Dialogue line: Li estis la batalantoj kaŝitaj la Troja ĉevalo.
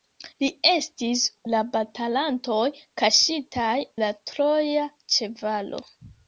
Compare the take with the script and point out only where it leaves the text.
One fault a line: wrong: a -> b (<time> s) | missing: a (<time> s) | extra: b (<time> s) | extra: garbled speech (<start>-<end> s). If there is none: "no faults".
no faults